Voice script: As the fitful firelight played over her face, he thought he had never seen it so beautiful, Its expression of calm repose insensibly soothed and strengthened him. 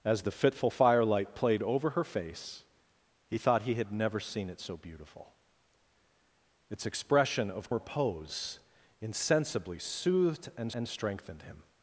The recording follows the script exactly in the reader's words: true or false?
false